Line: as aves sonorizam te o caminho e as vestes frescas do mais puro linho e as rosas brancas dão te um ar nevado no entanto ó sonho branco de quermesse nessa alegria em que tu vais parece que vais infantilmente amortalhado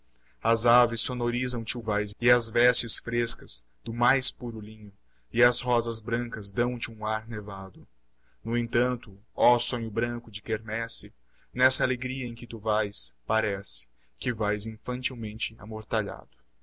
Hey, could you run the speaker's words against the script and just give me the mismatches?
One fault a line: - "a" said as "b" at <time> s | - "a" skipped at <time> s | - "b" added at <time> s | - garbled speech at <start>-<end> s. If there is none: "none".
- "caminho" said as "vais" at 1.8 s